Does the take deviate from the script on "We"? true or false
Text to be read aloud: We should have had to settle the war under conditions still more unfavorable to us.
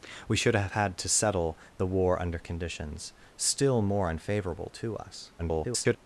false